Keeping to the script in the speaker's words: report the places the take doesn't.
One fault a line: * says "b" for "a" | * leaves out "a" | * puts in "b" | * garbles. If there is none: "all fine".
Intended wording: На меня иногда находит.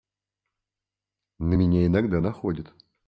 all fine